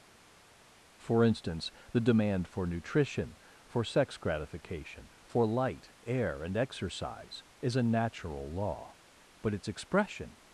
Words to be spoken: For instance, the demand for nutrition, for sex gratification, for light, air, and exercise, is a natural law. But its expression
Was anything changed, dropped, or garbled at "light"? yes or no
no